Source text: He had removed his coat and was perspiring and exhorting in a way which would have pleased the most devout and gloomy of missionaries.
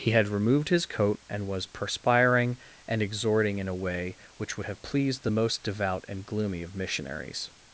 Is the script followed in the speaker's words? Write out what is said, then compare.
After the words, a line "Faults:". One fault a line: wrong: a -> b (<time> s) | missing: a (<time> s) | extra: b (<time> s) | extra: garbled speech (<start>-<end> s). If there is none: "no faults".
He had removed his coat and was perspiring and exhorting in a way which would have pleased the most devout and gloomy of missionaries.
Faults:
no faults